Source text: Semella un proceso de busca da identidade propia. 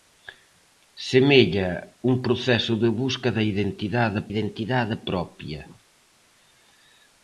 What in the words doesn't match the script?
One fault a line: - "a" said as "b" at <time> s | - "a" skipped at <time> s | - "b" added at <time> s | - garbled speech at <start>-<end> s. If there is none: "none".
- "identidade" added at 4.3 s